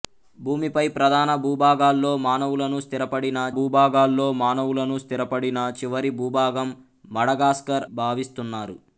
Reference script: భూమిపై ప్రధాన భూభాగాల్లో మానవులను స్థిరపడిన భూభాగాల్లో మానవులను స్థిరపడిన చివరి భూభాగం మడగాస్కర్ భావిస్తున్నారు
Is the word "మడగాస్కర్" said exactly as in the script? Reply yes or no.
yes